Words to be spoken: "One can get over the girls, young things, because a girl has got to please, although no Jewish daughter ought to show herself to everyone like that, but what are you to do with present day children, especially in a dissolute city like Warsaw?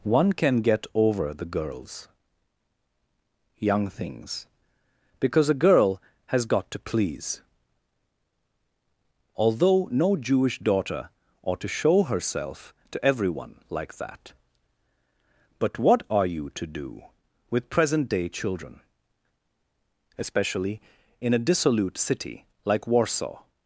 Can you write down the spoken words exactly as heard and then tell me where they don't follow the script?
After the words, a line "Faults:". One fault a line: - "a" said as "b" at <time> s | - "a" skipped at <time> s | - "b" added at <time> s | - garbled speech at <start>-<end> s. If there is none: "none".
"One can get over the girls, young things, because a girl has got to please, although no Jewish daughter ought to show herself to everyone like that, but what are you to do with present day children, especially in a dissolute city like Warsaw?
Faults:
none